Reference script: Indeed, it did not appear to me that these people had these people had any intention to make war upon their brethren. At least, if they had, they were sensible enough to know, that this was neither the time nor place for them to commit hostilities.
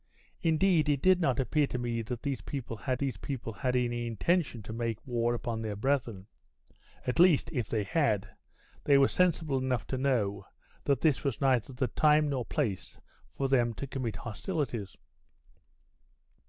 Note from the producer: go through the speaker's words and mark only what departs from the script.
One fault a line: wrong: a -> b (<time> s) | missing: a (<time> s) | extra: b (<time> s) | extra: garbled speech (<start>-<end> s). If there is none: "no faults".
no faults